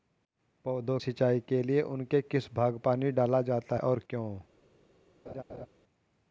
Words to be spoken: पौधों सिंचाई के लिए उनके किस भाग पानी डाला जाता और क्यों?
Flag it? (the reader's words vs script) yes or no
no